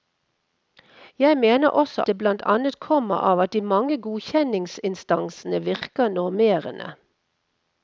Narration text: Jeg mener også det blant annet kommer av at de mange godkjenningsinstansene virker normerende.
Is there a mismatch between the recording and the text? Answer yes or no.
no